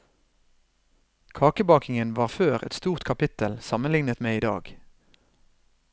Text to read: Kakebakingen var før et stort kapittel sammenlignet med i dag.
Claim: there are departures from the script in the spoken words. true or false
false